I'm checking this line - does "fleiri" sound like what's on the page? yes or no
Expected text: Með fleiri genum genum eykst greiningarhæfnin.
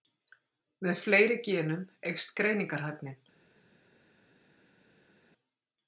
yes